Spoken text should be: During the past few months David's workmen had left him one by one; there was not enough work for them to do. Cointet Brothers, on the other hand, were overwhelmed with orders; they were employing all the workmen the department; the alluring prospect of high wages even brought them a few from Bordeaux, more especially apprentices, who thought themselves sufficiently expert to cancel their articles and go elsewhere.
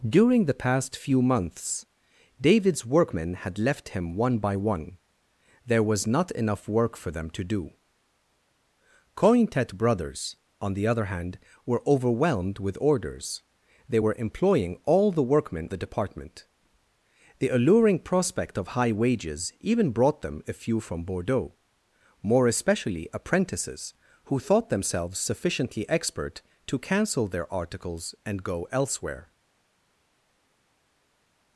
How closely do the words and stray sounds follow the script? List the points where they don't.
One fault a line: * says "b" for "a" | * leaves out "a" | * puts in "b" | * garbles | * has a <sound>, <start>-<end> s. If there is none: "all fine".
all fine